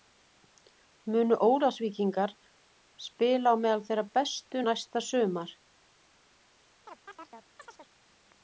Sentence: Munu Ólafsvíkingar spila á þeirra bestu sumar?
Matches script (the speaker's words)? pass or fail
fail